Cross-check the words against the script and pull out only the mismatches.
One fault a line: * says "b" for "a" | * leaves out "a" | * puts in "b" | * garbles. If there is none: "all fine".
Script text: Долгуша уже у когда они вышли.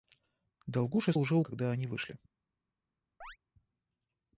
all fine